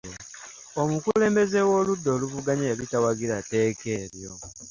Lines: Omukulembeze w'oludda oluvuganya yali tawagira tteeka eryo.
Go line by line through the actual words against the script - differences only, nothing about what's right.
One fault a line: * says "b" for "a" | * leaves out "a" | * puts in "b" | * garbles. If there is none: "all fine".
all fine